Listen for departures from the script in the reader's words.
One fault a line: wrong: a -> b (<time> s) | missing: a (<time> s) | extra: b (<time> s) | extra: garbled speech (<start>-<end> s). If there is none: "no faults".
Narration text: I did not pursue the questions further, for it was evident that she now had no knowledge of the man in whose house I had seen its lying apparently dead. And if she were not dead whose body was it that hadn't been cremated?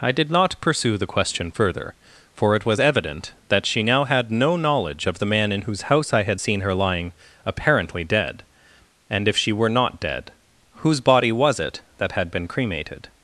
wrong: questions -> question (1.1 s)
wrong: its -> her (6.6 s)
wrong: hadn't -> had (12.1 s)